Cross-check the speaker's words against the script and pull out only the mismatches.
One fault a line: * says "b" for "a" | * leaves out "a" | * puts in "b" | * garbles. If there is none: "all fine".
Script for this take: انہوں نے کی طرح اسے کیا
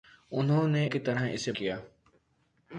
all fine